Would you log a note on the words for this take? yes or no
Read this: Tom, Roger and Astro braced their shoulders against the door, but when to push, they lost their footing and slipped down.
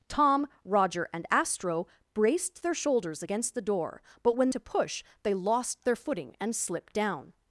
no